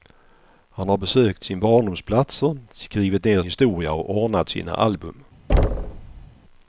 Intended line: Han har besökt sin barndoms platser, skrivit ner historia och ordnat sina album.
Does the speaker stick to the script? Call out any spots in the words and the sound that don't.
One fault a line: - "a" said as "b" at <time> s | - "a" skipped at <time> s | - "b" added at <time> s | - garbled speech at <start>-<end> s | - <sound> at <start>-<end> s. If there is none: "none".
- thud at 5.5-6.3 s